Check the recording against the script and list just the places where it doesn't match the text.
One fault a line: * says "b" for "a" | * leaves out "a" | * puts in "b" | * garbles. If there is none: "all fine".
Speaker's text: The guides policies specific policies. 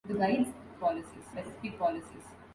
all fine